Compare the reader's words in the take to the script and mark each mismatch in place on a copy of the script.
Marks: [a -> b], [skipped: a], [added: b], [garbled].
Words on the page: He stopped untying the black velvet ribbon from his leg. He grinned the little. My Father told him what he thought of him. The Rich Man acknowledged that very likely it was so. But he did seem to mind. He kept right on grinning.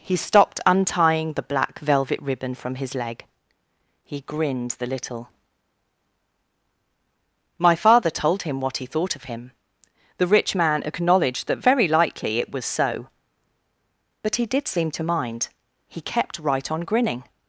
He stopped untying the black velvet ribbon from his leg. He grinned the little. My Father told him what he thought of him. The Rich Man acknowledged that very likely it was so. But he did seem to mind. He kept right on grinning.